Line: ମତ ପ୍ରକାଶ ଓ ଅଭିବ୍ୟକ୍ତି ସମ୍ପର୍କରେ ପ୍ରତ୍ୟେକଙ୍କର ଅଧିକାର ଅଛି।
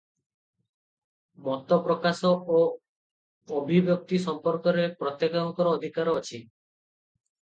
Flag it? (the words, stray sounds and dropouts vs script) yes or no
no